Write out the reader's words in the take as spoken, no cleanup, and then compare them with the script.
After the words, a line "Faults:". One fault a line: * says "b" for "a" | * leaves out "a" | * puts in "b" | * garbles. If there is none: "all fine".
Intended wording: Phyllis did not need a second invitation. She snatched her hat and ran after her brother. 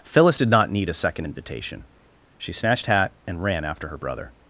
Phyllis did not need a second invitation. She snatched hat and ran after her brother.
Faults:
* leaves out "her"